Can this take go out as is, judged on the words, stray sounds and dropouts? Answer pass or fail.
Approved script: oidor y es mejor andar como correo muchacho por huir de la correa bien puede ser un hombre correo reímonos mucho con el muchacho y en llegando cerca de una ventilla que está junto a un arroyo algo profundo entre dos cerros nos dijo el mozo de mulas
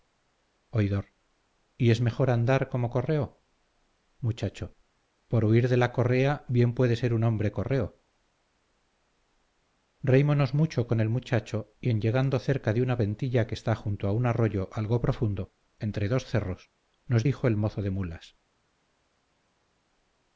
pass